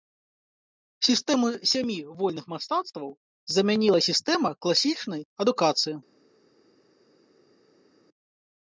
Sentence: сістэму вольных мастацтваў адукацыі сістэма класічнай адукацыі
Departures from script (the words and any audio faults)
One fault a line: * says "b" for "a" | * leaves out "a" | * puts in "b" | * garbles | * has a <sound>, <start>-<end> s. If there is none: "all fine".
* puts in "сямі"
* says "замяніла" for "адукацыі"